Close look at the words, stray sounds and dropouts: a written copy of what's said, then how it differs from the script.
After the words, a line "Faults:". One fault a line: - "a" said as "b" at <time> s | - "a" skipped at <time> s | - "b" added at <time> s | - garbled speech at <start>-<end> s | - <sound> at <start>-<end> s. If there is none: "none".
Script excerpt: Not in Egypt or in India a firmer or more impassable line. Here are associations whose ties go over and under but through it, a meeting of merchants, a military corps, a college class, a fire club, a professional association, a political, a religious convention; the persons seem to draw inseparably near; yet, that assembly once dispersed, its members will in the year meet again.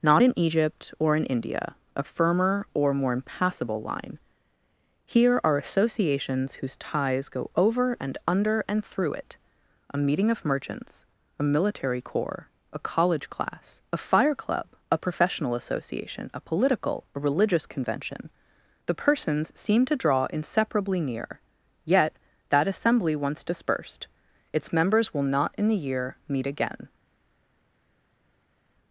Not in Egypt or in India a firmer or more impassable line. Here are associations whose ties go over and under and through it, a meeting of merchants, a military corps, a college class, a fire club, a professional association, a political, a religious convention; the persons seem to draw inseparably near; yet, that assembly once dispersed, its members will not in the year meet again.
Faults:
- "but" said as "and" at 8.7 s
- "not" added at 25.3 s